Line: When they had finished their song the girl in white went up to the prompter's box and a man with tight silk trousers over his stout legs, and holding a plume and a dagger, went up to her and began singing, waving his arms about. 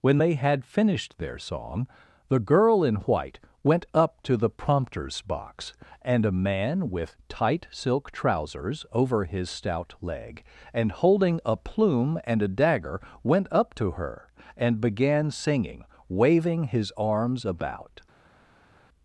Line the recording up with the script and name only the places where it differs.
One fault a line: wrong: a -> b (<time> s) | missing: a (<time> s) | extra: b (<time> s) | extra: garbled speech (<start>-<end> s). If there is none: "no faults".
wrong: legs -> leg (10.0 s)